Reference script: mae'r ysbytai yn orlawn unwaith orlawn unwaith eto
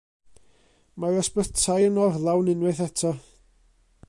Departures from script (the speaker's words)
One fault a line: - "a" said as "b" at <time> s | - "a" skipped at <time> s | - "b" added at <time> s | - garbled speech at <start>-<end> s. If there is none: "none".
- "orlawn unwaith" skipped at 2.8 s